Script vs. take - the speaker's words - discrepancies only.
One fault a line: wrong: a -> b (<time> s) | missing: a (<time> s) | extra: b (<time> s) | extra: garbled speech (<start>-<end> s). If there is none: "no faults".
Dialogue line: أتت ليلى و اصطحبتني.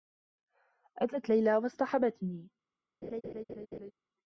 no faults